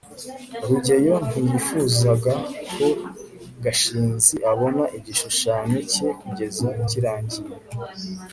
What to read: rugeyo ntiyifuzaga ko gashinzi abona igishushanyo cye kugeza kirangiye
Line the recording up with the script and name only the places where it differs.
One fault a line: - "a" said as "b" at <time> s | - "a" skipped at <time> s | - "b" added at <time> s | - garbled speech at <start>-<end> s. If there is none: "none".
none